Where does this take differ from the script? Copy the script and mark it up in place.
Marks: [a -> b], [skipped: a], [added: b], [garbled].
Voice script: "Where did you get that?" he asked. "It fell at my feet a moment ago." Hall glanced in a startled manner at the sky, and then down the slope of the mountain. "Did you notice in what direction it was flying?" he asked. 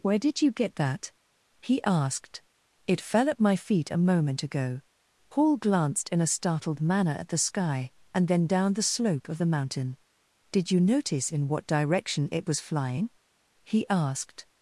"Where did you get that?" he asked. "It fell at my feet a moment ago." [Hall -> Paul] glanced in a startled manner at the sky, and then down the slope of the mountain. "Did you notice in what direction it was flying?" he asked.